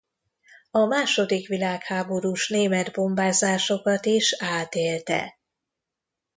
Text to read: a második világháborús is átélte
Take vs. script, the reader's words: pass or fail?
fail